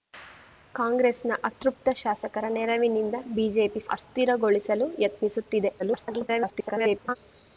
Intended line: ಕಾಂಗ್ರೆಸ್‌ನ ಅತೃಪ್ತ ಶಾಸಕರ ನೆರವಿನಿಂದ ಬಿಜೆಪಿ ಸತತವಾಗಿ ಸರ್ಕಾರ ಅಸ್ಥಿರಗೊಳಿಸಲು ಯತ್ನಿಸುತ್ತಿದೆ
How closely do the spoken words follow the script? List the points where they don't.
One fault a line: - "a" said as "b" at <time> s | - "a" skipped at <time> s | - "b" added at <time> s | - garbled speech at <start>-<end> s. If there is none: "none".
- "ಸತತವಾಗಿ ಸರ್ಕಾರ" skipped at 3.8 s
- garbled speech at 5.8-7.2 s